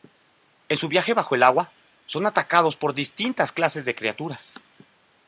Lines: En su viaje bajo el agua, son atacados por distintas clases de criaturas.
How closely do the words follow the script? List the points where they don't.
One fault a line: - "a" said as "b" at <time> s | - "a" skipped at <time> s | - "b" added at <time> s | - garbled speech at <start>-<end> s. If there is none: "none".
none